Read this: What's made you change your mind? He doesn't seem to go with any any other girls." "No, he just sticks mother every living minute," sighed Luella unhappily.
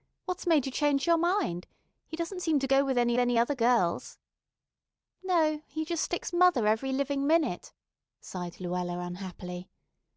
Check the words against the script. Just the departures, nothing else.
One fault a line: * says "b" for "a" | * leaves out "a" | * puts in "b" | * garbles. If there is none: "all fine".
all fine